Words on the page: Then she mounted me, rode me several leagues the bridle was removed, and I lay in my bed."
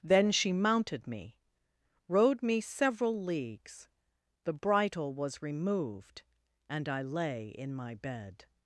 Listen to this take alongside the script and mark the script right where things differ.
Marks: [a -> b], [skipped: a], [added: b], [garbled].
Then she mounted me, rode me several leagues the bridle was removed, and I lay in my bed."